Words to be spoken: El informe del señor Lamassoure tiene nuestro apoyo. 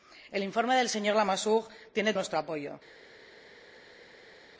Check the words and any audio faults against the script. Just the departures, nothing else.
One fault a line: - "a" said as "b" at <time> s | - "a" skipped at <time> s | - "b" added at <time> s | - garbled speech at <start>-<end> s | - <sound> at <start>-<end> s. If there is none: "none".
none